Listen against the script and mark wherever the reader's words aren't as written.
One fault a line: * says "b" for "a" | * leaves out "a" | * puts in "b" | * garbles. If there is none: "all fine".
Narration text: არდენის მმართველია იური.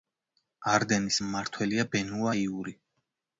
* puts in "ბენუა"